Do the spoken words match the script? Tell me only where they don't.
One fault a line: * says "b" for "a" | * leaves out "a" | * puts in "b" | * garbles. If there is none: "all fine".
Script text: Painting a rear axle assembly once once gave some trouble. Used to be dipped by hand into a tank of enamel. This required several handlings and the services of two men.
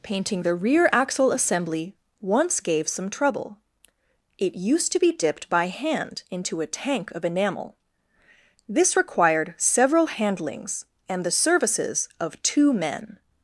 * says "the" for "a"
* leaves out "once"
* puts in "It"